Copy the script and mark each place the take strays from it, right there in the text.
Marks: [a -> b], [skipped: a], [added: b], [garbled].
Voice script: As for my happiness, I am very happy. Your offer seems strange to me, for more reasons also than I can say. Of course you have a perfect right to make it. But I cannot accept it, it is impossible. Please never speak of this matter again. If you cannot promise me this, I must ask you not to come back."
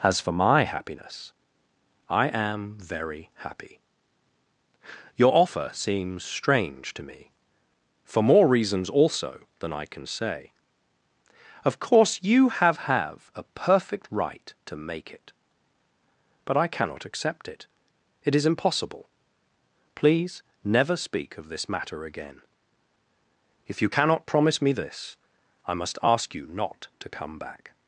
As for my happiness, I am very happy. Your offer seems strange to me, for more reasons also than I can say. Of course you have [added: have] a perfect right to make it. But I cannot accept it, it is impossible. Please never speak of this matter again. If you cannot promise me this, I must ask you not to come back."